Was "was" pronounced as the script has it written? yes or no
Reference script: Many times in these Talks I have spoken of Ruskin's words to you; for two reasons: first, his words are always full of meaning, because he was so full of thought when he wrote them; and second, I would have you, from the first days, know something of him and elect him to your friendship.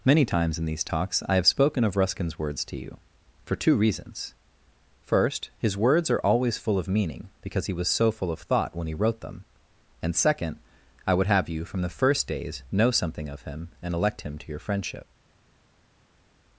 yes